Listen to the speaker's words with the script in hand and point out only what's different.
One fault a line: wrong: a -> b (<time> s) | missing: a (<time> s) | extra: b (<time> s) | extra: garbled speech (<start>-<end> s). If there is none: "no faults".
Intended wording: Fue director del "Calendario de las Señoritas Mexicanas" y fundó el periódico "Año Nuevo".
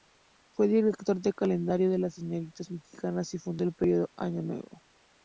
no faults